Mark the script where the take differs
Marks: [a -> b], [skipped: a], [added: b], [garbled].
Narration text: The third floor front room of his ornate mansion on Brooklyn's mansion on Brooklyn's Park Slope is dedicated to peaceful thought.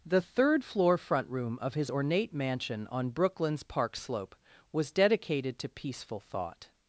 The third floor front room of his ornate mansion on Brooklyn's [skipped: mansion on Brooklyn's] Park Slope [is -> was] dedicated to peaceful thought.